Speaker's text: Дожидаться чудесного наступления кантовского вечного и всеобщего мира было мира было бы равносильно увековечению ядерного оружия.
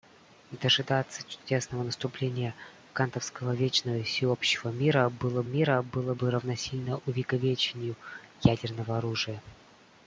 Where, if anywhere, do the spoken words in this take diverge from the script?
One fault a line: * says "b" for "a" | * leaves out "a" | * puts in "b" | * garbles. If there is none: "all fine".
all fine